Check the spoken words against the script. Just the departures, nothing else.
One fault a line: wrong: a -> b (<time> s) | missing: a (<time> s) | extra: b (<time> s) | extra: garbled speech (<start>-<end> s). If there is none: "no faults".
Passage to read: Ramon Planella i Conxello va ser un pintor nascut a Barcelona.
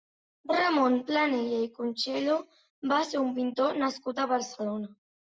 no faults